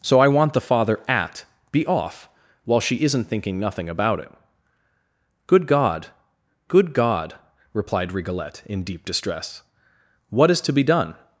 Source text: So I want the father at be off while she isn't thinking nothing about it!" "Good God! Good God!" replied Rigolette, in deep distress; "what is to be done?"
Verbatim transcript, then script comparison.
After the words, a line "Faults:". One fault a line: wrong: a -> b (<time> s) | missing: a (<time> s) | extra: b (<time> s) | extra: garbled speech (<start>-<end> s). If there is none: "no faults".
So I want the father at be off while she isn't thinking nothing about it!" "Good God! Good God!" replied Rigolette, in deep distress; "what is to be done?"
Faults:
no faults